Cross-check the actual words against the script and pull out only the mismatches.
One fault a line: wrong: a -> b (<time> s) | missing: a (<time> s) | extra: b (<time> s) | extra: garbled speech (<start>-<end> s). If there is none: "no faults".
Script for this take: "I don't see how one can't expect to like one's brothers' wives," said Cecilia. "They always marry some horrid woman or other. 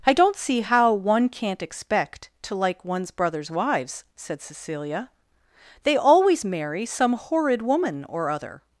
no faults